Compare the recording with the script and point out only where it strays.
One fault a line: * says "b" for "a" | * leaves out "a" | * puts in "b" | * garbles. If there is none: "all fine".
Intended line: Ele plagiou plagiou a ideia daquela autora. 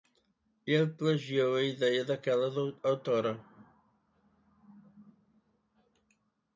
* leaves out "plagiou"